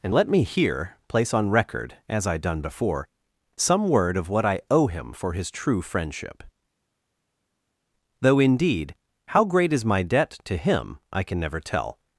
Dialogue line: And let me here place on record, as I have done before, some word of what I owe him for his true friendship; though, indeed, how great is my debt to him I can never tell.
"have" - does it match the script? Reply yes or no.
no